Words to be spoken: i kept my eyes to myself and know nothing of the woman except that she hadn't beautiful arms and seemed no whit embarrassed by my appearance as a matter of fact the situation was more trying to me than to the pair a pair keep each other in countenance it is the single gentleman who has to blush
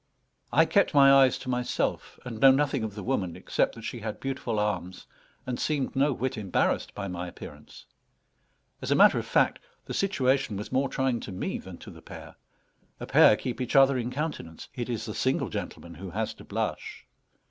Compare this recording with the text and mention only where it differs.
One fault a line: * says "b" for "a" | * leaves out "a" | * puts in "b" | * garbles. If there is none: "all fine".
* says "had" for "hadn't"